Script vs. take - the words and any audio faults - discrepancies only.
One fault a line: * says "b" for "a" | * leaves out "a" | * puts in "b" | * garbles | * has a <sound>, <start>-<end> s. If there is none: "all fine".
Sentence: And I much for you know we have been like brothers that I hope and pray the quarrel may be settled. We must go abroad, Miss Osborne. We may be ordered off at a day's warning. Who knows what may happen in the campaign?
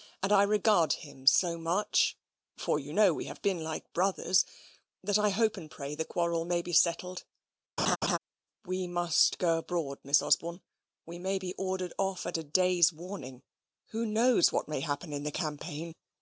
* puts in "regard him so"
* has a laugh, 7.8-8.2 s